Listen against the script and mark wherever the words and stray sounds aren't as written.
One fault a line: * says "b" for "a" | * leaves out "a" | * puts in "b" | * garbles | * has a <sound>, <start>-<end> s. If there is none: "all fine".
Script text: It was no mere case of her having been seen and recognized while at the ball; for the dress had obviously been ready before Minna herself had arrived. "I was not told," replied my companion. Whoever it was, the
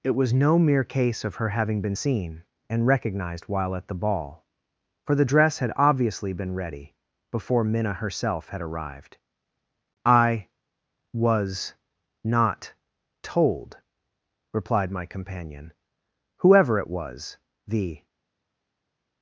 all fine